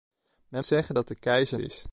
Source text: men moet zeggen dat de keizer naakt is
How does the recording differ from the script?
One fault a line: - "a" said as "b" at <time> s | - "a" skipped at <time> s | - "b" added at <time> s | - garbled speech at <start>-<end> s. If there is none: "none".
- "moet" skipped at 0.7 s
- "naakt" skipped at 1.6 s